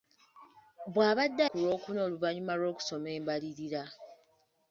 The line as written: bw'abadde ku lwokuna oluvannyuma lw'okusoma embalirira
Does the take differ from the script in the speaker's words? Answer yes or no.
no